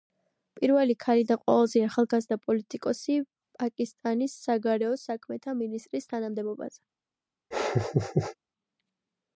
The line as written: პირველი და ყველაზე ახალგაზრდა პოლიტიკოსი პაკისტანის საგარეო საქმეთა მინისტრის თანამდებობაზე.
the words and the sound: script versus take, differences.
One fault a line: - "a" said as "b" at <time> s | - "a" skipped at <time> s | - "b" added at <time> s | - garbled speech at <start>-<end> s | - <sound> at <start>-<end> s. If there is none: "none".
- "ქალი" added at 1.0 s
- laugh at 7.5-8.4 s